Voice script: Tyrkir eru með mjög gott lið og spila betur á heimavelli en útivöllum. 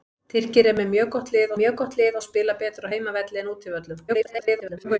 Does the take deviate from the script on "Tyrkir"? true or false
false